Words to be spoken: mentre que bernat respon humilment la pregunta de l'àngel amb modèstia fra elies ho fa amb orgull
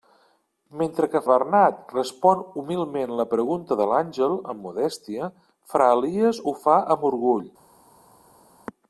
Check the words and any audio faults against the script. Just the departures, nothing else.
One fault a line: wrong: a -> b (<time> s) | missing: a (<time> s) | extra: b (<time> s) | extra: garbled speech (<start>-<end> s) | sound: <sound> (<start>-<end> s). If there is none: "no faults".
no faults